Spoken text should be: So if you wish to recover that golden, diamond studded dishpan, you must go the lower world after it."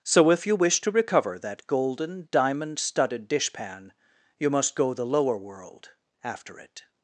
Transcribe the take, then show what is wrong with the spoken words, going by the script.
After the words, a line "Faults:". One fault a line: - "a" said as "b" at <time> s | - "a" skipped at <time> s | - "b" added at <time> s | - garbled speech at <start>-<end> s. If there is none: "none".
So if you wish to recover that golden, diamond studded dishpan, you must go the lower world after it."
Faults:
none